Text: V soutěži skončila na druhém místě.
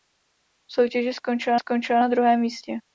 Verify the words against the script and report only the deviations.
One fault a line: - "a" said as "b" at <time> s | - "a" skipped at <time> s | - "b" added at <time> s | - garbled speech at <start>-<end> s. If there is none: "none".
- "skončila" added at 1.6 s